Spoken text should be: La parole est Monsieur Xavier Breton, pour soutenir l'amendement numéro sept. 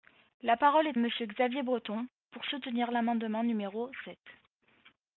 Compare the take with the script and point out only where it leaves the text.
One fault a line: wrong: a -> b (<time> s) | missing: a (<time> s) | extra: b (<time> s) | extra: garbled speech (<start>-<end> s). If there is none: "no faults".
no faults